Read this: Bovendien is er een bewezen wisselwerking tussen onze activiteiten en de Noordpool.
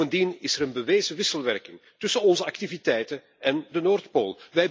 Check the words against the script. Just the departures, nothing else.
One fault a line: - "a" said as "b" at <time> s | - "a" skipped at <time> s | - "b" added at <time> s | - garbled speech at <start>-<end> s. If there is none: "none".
none